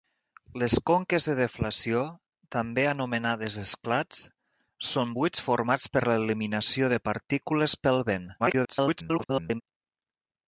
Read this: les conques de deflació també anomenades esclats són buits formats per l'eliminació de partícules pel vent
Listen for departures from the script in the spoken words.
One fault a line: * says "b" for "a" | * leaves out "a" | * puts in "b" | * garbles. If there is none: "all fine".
* garbles